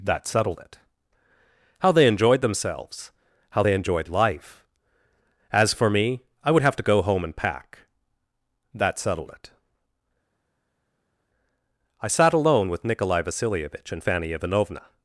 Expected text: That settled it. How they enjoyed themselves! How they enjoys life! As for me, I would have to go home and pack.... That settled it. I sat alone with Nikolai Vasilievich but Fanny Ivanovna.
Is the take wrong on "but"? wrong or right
wrong